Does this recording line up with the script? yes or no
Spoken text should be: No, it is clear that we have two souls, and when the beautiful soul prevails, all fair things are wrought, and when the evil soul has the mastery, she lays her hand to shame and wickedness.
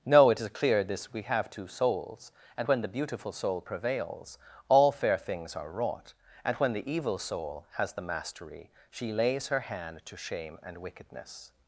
no